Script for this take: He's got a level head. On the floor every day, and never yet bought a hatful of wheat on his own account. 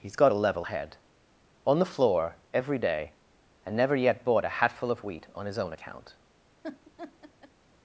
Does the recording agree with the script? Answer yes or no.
yes